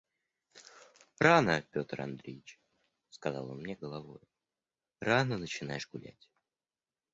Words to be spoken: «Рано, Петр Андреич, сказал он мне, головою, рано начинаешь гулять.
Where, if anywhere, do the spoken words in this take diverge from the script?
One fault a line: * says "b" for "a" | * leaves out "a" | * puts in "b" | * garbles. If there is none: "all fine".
all fine